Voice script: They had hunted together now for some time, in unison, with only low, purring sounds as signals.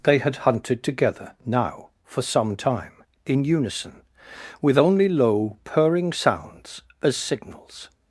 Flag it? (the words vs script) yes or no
no